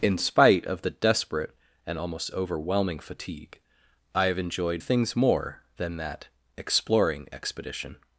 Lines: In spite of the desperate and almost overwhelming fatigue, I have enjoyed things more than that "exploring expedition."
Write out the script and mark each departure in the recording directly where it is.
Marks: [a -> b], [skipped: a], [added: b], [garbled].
In spite of the desperate and almost overwhelming fatigue, I have enjoyed things more than that "exploring expedition."